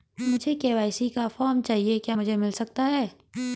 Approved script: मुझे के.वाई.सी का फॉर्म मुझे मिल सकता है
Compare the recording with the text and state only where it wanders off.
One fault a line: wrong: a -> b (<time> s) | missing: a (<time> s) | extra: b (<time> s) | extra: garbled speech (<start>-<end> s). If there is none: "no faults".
extra: चाहिए क्या (1.6 s)